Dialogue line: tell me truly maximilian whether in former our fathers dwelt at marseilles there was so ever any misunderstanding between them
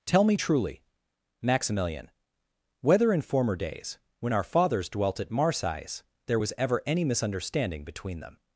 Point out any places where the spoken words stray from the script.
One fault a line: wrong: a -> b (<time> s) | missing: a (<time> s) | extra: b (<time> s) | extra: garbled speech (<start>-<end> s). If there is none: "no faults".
extra: days when (3.5 s)
missing: so (6.5 s)